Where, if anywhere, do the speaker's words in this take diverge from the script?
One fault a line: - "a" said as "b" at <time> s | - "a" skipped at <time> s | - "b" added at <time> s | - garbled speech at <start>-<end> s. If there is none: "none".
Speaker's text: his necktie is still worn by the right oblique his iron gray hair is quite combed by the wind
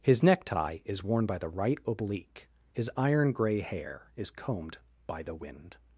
- "still" skipped at 1.0 s
- "quite" skipped at 4.3 s